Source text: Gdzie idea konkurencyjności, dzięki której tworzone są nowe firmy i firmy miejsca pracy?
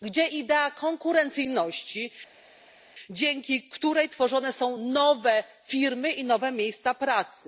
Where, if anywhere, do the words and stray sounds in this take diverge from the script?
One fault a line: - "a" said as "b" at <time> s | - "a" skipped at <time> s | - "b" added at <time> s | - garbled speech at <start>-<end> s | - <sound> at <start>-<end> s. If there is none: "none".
- "firmy" said as "nowe" at 6.2 s